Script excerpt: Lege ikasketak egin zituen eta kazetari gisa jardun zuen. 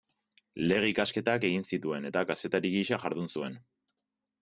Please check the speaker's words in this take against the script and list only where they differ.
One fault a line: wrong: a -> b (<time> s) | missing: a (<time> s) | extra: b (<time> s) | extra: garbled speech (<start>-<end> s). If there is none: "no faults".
no faults